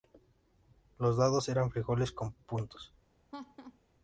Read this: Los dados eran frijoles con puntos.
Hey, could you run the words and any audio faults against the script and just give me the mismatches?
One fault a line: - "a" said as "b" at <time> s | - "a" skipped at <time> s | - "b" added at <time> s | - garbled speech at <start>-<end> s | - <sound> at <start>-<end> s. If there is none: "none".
- laugh at 3.3-3.8 s